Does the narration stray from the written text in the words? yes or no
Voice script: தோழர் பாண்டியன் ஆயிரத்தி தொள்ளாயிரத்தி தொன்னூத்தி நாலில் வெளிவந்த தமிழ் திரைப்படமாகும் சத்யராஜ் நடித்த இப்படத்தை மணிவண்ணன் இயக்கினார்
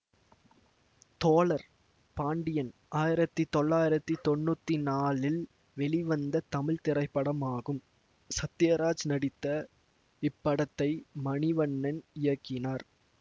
no